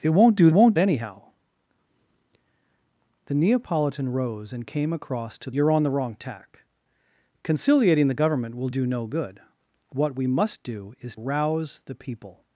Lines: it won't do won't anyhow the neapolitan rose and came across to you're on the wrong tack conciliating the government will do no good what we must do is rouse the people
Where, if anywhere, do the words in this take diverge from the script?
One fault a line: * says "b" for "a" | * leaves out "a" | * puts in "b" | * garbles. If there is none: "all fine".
all fine